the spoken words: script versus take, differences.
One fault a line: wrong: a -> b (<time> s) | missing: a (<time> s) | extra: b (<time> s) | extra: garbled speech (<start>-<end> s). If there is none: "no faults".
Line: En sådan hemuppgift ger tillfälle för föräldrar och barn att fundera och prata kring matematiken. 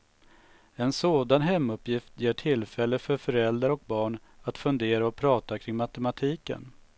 no faults